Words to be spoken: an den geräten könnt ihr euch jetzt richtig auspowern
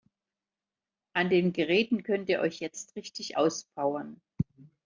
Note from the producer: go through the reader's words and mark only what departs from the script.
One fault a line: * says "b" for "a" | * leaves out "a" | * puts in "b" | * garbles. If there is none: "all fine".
all fine